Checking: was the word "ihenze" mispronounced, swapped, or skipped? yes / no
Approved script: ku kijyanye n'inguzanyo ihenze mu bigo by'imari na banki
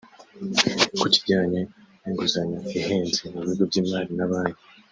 no